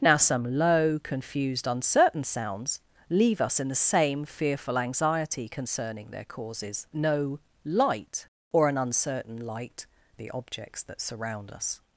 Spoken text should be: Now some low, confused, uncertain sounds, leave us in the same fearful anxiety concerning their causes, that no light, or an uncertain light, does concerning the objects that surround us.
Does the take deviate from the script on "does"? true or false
true